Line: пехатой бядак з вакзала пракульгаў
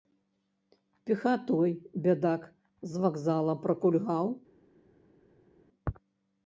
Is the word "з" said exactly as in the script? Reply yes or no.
yes